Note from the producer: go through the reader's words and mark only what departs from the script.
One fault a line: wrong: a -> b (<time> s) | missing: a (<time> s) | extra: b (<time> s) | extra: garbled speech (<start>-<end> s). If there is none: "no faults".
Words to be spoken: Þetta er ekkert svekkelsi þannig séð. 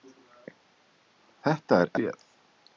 missing: ekkert svekkelsi þannig (1.9 s)